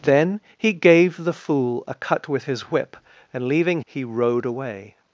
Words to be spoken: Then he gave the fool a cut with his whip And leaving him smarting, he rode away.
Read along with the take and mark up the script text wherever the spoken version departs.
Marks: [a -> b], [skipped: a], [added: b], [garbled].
Then he gave the fool a cut with his whip And leaving [skipped: him smarting,] he rode away.